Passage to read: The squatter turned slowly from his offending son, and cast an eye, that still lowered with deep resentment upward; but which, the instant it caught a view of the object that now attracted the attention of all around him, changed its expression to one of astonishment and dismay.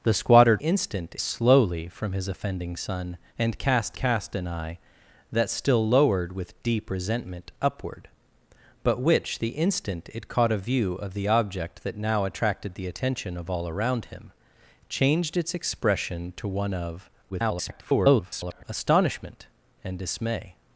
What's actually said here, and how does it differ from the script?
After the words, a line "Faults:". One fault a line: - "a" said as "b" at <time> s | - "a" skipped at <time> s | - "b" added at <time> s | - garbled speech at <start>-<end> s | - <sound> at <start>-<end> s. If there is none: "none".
The squatter instant slowly from his offending son, and cast cast an eye, that still lowered with deep resentment upward; but which, the instant it caught a view of the object that now attracted the attention of all around him, changed its expression to one of [garbled] astonishment and dismay.
Faults:
- "turned" said as "instant" at 0.6 s
- "cast" added at 3.9 s
- garbled speech at 17.3-18.6 s